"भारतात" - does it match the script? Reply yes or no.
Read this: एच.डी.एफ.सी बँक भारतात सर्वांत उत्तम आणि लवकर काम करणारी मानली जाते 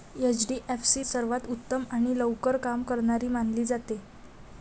no